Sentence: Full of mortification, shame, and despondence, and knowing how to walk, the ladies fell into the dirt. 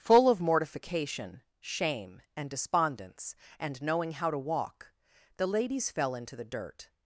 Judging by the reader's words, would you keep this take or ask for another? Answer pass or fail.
pass